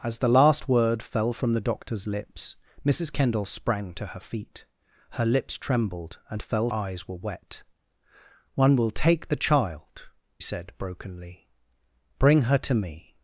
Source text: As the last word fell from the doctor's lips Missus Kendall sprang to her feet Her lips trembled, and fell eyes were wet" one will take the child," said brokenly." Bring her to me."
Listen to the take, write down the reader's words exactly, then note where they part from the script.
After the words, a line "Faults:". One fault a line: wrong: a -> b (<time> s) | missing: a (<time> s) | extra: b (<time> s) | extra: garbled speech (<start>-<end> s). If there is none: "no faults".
As the last word fell from the doctor's lips Missus Kendall sprang to her feet Her lips trembled, and fell eyes were wet" one will take the child," said brokenly." Bring her to me."
Faults:
no faults